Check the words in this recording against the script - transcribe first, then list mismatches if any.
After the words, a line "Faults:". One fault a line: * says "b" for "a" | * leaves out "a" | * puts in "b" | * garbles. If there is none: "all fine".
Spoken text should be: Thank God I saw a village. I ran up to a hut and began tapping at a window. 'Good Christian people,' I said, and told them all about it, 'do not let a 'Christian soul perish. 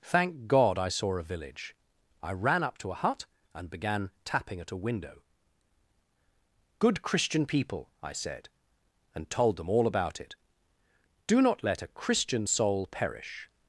Thank God I saw a village. I ran up to a hut and began tapping at a window. 'Good Christian people,' I said, and told them all about it, 'do not let a 'Christian soul perish.
Faults:
all fine